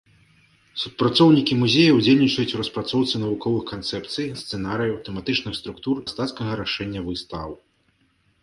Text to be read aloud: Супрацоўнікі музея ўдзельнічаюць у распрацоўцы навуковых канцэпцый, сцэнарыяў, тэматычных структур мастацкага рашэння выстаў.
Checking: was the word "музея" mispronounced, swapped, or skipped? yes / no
no